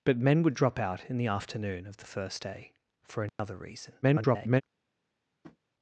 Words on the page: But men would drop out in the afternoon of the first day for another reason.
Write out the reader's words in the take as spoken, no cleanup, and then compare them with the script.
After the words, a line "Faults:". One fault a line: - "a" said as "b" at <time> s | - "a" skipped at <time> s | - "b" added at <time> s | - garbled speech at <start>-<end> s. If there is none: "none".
But men would drop out in the afternoon of the first day for another reason. [garbled]
Faults:
- garbled speech at 4.0-4.6 s